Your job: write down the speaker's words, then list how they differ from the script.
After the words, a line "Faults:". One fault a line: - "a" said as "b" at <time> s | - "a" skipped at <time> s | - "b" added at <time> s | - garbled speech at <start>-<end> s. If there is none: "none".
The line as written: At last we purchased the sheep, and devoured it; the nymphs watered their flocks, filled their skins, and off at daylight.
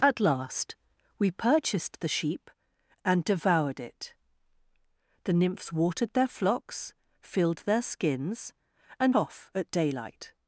At last we purchased the sheep, and devoured it; the nymphs watered their flocks, filled their skins, and off at daylight.
Faults:
none